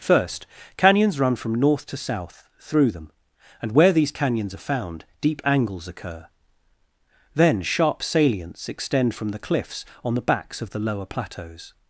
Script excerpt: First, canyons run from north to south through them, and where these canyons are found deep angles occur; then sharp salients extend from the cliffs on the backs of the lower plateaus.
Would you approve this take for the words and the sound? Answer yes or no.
yes